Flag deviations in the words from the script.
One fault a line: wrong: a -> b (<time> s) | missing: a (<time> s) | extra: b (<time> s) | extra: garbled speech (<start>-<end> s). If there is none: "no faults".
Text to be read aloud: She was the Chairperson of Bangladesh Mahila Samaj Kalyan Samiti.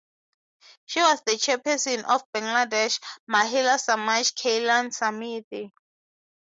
no faults